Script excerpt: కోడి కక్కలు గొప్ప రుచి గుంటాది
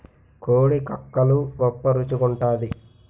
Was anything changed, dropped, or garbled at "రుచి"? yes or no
no